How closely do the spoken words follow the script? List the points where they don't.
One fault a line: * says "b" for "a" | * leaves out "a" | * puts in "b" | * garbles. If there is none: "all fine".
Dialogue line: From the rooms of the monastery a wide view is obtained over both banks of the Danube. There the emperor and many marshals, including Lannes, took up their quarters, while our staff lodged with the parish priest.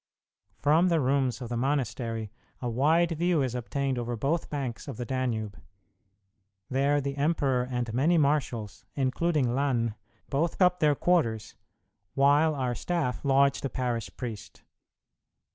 * says "both" for "took"
* leaves out "with"